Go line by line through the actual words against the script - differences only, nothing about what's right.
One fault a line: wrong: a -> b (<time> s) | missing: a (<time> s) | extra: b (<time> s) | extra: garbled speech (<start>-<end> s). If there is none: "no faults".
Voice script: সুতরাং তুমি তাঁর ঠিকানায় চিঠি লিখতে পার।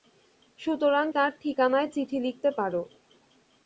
missing: তুমি (1.1 s)